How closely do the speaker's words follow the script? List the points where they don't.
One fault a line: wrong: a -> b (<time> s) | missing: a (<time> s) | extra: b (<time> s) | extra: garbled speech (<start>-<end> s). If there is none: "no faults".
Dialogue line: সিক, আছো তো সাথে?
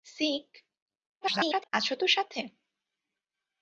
extra: garbled speech (1.2-1.7 s)